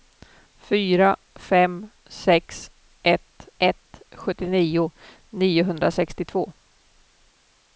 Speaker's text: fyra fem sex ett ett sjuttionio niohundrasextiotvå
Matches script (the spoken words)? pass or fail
pass